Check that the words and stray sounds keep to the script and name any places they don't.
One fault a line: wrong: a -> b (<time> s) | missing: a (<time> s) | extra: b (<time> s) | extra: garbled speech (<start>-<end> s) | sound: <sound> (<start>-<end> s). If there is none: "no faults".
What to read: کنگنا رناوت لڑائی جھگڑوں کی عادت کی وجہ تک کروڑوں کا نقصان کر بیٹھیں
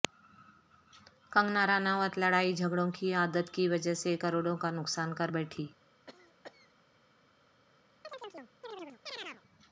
wrong: تک -> سے (4.0 s)
sound: cough (6.1-6.7 s)
sound: chirp (8.0-9.4 s)